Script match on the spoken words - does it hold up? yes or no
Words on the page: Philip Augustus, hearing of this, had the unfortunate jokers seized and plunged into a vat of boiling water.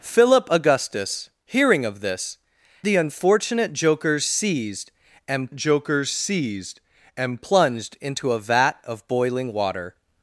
no